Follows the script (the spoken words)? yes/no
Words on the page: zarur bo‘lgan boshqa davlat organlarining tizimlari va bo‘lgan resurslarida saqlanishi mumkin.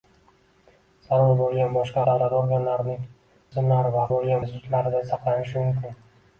yes